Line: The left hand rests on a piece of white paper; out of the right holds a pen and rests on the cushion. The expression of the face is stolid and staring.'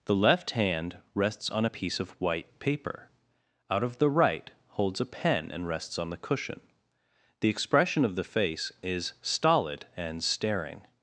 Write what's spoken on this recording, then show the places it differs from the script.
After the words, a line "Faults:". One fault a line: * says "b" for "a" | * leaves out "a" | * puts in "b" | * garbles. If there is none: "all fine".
The left hand rests on a piece of white paper; out of the right holds a pen and rests on the cushion. The expression of the face is stolid and staring.'
Faults:
all fine